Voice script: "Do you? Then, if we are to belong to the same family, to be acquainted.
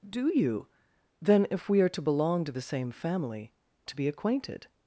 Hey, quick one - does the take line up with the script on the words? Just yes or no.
yes